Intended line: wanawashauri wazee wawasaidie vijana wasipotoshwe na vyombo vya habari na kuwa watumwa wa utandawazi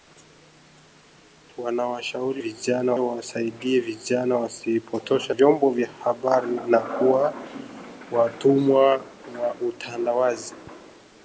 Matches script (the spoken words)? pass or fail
fail